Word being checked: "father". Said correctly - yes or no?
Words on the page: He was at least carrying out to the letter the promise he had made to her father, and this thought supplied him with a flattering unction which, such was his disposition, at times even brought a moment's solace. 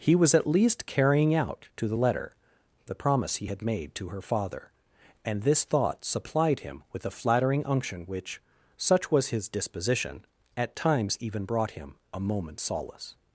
yes